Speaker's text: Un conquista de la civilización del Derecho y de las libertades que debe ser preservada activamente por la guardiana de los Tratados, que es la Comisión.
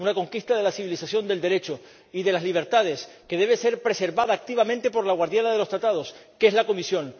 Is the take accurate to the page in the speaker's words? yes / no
no